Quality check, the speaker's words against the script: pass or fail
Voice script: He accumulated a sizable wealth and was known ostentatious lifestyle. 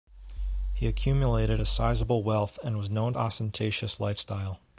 pass